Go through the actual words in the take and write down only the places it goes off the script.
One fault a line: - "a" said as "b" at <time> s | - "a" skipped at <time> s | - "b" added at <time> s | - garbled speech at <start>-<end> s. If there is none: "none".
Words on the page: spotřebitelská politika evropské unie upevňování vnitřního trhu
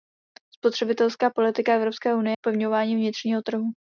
none